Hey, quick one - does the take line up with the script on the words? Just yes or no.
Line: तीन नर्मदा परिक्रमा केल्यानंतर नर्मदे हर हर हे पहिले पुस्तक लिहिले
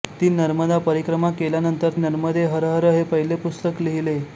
yes